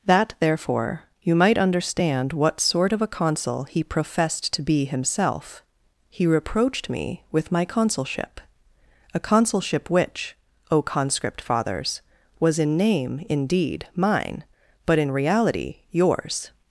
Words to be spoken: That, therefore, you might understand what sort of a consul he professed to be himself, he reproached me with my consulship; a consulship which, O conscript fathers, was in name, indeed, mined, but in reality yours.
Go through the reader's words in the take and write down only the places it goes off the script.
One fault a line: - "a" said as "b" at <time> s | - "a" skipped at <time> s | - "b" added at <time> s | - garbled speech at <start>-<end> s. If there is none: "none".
- "mined" said as "mine" at 13.9 s